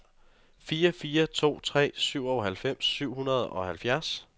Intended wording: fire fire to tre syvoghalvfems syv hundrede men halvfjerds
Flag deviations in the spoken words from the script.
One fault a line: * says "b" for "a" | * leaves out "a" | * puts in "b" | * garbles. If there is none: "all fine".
* says "og" for "men"